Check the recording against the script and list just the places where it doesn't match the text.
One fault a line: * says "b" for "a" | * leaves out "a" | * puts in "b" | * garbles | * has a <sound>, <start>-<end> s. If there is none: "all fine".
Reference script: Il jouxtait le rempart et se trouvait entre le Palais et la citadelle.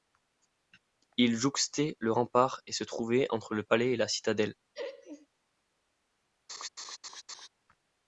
* has a laugh, 4.7-5.3 s
* has a laugh, 6.5-7.5 s